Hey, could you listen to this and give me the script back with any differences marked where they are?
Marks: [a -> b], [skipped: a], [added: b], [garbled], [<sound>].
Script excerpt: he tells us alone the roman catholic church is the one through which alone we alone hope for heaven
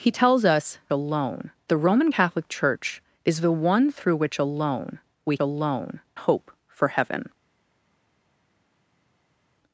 he tells us alone the roman catholic church is the one through which alone we alone hope for heaven